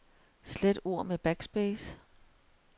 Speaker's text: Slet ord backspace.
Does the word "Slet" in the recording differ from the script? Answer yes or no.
no